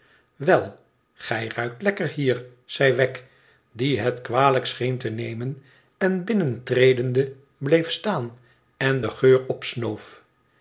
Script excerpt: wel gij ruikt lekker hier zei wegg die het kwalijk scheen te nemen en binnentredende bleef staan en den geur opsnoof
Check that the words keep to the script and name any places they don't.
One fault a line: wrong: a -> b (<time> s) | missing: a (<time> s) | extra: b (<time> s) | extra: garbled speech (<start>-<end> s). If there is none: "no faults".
no faults